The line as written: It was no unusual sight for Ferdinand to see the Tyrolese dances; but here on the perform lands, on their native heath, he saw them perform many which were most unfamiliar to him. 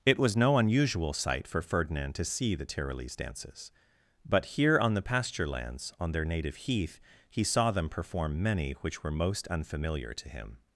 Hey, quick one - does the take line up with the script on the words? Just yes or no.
no